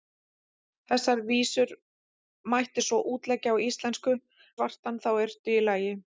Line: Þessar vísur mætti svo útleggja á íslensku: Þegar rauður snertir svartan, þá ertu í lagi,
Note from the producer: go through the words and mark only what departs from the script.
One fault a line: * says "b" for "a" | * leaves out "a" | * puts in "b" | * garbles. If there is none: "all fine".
* leaves out "Þegar rauður snertir"